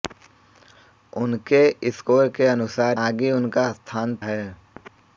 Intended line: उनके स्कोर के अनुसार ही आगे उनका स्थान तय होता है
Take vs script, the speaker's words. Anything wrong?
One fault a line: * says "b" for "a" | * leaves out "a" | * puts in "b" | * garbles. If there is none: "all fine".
* leaves out "ही"
* leaves out "तय होता"